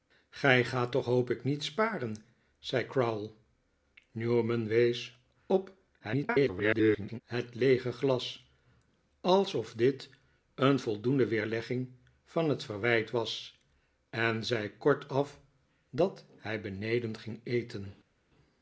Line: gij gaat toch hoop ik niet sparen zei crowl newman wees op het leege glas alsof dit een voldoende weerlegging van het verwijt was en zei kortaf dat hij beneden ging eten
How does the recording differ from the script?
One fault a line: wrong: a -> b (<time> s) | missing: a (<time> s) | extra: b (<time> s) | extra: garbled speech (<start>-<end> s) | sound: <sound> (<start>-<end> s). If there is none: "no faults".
extra: garbled speech (6.0-7.2 s)